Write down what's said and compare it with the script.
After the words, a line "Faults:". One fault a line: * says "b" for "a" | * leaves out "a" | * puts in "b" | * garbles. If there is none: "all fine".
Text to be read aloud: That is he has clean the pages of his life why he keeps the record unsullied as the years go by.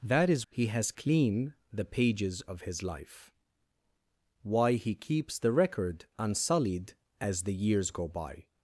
That is he has clean the pages of his life why he keeps the record unsullied as the years go by.
Faults:
all fine